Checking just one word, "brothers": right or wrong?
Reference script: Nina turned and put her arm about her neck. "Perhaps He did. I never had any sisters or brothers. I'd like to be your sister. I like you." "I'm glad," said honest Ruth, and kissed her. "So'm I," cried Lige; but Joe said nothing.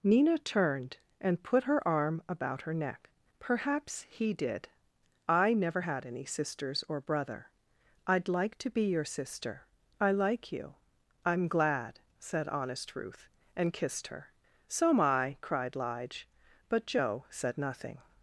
wrong